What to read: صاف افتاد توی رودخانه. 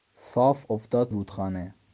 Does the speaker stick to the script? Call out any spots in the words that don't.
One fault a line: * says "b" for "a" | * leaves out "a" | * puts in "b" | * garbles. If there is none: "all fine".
* leaves out "توی"